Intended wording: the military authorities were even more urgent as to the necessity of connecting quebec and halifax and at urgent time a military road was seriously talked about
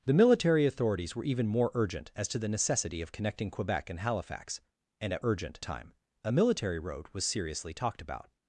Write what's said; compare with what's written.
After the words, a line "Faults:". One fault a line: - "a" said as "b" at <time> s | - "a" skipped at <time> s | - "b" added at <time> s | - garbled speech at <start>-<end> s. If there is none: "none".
the military authorities were even more urgent as to the necessity of connecting quebec and halifax and at urgent time a military road was seriously talked about
Faults:
none